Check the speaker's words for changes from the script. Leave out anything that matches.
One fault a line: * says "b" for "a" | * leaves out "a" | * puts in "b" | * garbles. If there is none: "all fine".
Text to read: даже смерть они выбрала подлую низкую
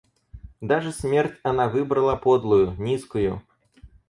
* says "она" for "они"